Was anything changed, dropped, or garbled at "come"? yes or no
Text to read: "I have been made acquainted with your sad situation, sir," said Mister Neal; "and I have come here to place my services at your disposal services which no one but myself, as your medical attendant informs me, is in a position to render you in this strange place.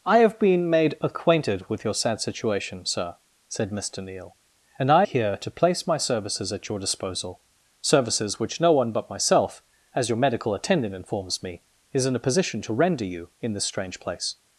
yes